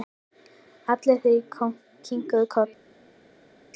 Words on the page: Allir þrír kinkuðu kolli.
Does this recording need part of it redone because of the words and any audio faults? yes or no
no